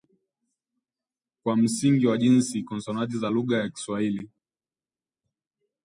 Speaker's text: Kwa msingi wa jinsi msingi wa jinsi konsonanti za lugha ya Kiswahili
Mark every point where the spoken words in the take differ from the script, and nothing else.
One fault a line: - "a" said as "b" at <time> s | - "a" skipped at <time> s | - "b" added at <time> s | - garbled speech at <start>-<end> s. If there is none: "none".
- "msingi wa jinsi" skipped at 2.6 s